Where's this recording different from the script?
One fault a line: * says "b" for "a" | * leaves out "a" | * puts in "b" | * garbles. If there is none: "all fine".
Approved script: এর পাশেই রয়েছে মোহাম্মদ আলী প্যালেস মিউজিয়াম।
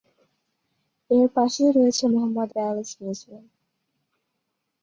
* leaves out "আলী"